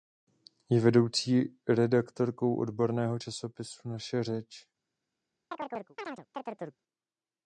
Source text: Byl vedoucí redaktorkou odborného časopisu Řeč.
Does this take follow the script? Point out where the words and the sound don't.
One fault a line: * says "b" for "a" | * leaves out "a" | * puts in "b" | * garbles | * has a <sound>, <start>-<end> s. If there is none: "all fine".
* says "Je" for "Byl"
* puts in "Naše"
* has a chirp, 5.5-6.8 s